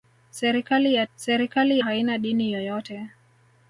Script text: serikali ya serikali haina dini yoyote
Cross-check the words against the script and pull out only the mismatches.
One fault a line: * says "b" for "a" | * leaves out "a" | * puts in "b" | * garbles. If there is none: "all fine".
all fine